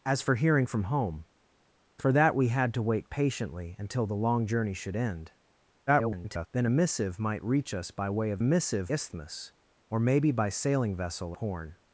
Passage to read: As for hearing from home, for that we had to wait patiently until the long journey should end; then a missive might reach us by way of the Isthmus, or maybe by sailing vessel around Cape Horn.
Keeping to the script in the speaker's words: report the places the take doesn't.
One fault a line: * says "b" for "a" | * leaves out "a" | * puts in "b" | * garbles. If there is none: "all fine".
* garbles
* says "missive" for "the"
* leaves out "around Cape"